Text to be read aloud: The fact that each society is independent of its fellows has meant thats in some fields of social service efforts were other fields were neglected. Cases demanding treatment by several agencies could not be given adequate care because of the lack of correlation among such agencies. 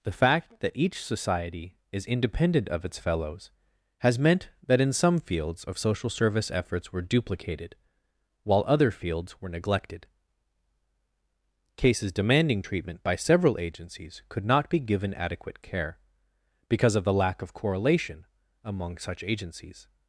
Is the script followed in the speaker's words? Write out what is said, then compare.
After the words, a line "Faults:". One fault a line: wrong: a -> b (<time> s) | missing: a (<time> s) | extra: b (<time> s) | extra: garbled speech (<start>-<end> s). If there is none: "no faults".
The fact that each society is independent of its fellows has meant that in some fields of social service efforts were duplicated, while other fields were neglected. Cases demanding treatment by several agencies could not be given adequate care because of the lack of correlation among such agencies.
Faults:
wrong: thats -> that (4.7 s)
extra: duplicated while (7.0 s)